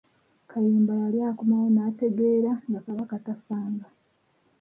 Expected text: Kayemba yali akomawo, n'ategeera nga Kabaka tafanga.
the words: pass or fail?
pass